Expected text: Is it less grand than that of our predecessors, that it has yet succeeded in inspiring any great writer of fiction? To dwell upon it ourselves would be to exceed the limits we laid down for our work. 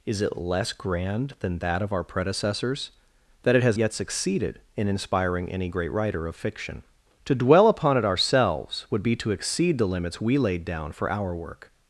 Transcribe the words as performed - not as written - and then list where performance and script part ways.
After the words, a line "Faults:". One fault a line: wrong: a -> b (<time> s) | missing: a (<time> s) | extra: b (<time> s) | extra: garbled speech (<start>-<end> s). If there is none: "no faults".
Is it less grand than that of our predecessors, that it has yet succeeded in inspiring any great writer of fiction? To dwell upon it ourselves would be to exceed the limits we laid down for our work.
Faults:
no faults